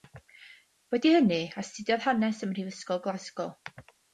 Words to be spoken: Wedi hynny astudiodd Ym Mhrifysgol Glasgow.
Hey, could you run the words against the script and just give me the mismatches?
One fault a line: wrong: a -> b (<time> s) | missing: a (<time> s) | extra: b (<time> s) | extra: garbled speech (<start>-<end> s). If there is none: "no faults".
extra: Hanes (2.1 s)